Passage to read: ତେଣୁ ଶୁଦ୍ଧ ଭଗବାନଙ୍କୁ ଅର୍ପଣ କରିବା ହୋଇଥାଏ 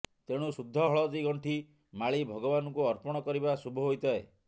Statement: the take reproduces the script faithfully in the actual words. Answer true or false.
false